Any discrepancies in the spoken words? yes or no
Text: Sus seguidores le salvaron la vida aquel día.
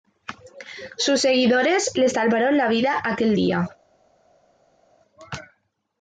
no